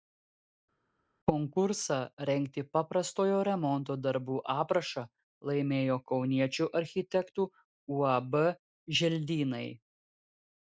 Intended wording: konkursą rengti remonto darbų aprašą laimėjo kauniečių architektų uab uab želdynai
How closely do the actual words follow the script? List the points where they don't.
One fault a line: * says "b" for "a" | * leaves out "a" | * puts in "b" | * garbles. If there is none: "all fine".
* puts in "paprastojo"
* leaves out "uab"